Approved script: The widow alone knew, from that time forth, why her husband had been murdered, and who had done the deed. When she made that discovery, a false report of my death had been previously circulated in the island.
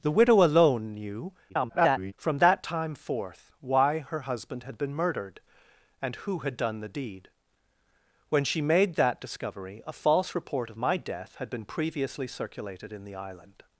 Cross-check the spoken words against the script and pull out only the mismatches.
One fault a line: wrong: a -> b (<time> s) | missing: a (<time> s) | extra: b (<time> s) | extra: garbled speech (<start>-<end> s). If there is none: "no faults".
extra: garbled speech (1.5-2.1 s)